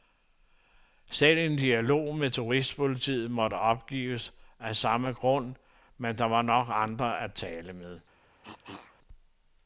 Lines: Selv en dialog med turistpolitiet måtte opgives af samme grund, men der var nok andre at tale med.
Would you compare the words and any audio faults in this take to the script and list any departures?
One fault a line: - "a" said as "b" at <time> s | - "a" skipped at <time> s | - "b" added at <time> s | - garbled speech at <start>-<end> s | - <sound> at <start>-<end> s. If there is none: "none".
- cough at 8.4-9.0 s